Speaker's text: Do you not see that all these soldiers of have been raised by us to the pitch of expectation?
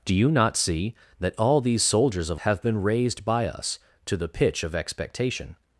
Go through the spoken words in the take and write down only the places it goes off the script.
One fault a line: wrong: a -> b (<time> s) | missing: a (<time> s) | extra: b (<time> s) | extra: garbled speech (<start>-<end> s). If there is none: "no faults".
no faults